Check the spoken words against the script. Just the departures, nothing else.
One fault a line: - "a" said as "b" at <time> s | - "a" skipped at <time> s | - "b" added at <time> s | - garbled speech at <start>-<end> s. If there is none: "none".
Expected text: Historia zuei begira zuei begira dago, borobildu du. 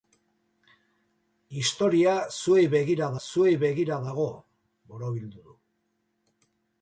none